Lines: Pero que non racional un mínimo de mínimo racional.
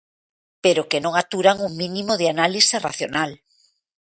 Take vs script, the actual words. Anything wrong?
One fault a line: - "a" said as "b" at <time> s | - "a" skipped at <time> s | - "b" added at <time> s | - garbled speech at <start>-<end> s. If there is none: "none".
- "racional" said as "aturan" at 1.2 s
- "mínimo" said as "análise" at 2.3 s